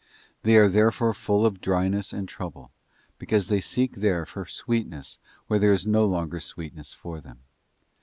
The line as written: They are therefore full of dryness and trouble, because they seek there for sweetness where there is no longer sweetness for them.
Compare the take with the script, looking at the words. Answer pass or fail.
pass